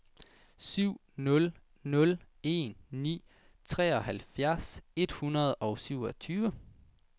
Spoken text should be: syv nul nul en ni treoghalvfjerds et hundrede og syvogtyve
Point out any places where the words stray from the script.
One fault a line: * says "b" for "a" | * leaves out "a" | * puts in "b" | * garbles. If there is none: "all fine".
all fine